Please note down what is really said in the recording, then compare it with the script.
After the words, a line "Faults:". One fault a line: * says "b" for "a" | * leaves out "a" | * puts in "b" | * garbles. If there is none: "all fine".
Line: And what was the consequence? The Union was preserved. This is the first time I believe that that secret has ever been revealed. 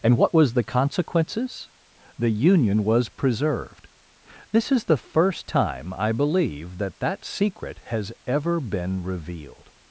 And what was the consequences? The Union was preserved. This is the first time I believe that that secret has ever been revealed.
Faults:
* says "consequences" for "consequence"